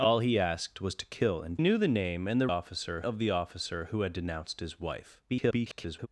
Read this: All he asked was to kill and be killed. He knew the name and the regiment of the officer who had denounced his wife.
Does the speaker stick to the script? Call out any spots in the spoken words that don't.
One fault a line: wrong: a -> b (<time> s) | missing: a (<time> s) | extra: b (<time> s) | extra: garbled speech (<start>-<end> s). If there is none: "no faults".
missing: be killed He (1.6 s)
wrong: regiment -> officer (2.5 s)
extra: garbled speech (5.3-6.1 s)